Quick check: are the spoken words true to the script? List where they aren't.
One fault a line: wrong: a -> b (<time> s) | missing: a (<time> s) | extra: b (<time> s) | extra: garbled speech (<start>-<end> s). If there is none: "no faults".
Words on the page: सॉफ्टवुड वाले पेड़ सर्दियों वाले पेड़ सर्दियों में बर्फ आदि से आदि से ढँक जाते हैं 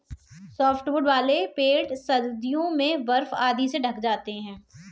missing: वाले पेड़ सर्दियों (2.7 s)
missing: आदि से (3.8 s)